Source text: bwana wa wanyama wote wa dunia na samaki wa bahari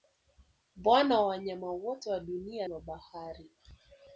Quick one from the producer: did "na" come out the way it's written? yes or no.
no